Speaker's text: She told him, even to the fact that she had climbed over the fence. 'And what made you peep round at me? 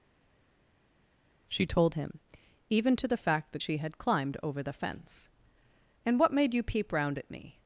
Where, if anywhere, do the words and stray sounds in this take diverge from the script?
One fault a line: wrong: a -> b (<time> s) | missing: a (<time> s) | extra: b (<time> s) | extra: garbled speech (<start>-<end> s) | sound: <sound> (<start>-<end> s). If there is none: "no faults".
no faults